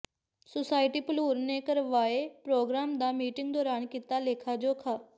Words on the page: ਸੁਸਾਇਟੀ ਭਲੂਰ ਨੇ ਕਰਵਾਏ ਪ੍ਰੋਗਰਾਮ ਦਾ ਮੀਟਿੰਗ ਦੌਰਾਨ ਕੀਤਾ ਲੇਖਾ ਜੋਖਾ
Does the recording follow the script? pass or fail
pass